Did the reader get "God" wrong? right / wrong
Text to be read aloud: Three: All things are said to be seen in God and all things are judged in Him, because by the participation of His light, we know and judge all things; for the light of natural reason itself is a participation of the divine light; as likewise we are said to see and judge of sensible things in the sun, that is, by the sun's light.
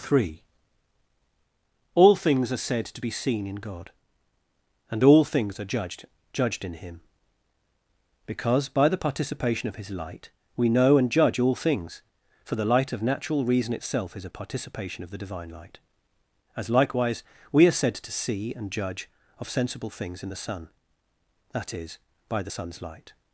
right